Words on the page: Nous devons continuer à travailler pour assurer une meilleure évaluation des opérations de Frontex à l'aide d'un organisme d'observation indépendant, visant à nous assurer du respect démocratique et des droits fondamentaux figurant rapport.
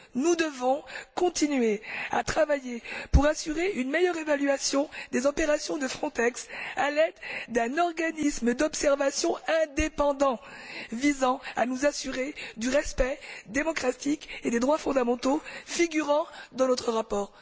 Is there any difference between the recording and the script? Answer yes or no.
yes